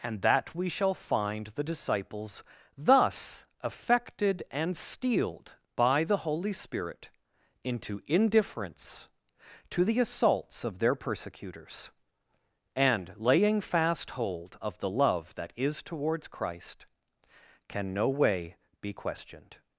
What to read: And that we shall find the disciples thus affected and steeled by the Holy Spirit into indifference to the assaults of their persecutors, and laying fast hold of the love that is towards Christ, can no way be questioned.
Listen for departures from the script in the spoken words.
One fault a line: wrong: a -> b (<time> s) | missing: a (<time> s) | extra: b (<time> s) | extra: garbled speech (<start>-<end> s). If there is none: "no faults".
no faults